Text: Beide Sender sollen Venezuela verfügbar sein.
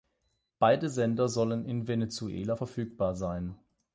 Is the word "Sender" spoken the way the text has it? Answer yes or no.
yes